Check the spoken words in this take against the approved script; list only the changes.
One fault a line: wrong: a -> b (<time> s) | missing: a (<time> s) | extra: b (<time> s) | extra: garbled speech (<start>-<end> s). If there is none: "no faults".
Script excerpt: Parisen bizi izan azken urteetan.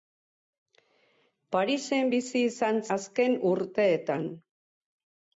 no faults